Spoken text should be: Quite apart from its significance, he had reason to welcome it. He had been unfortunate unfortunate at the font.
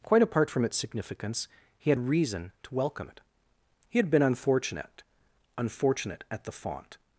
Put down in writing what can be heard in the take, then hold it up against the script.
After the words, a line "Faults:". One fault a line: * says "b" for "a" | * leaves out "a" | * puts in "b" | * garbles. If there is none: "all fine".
Quite apart from its significance, he had reason to welcome it. He had been unfortunate unfortunate at the font.
Faults:
all fine